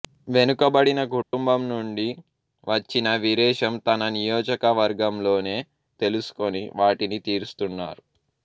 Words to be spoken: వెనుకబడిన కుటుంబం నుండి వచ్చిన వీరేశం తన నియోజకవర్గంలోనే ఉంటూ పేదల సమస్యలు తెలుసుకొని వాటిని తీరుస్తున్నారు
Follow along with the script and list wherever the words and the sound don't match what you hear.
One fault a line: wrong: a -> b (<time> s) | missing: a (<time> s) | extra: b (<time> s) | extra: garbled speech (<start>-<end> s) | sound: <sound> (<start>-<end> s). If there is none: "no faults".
sound: dropout (1.2-1.3 s)
missing: ఉంటూ పేదల సమస్యలు (5.5 s)